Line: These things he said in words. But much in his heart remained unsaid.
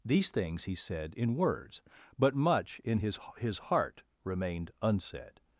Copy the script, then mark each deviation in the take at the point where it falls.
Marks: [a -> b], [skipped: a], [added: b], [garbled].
These things he said in words. But much in his [added: his] heart remained unsaid.